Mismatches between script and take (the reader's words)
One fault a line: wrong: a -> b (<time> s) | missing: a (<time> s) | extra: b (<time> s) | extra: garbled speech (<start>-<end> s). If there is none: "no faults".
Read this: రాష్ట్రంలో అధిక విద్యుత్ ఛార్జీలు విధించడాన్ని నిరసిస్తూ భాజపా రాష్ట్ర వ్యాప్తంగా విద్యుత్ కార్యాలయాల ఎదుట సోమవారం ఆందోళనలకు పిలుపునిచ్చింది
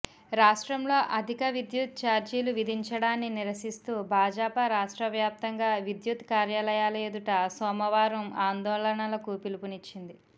no faults